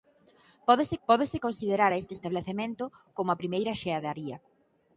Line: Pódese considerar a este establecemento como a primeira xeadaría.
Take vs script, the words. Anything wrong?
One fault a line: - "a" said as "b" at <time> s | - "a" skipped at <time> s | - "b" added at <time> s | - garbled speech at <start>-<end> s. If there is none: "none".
- "pódese" added at 1.1 s